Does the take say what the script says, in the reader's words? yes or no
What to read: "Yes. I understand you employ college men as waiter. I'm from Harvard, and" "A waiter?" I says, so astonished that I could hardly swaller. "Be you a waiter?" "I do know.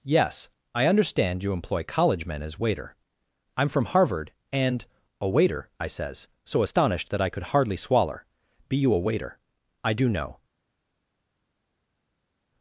yes